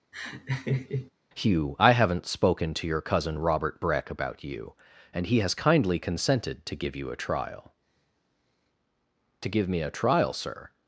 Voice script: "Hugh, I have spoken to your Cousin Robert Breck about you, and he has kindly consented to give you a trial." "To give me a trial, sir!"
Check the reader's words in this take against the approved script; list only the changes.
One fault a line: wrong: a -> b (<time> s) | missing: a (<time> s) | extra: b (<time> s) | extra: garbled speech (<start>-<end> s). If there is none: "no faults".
wrong: have -> haven't (1.9 s)